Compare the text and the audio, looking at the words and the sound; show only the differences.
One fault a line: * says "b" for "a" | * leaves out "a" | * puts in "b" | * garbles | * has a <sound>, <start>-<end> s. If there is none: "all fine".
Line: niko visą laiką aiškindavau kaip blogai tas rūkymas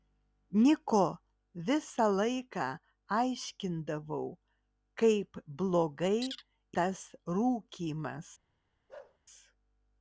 * has a bark, 8.9-9.2 s